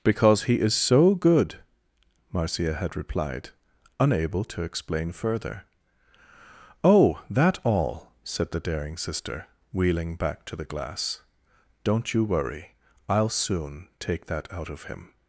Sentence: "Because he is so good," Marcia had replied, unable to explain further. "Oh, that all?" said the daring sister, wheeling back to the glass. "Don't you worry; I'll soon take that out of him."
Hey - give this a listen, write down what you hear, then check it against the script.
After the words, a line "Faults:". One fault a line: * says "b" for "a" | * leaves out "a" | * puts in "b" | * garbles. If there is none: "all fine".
"Because he is so good," Marcia had replied, unable to explain further. "Oh, that all?" said the daring sister, wheeling back to the glass. "Don't you worry; I'll soon take that out of him."
Faults:
all fine